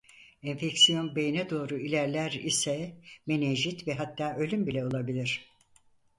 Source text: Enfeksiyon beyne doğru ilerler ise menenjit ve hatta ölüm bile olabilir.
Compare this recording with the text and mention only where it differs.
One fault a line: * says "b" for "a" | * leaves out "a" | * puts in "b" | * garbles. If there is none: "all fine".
all fine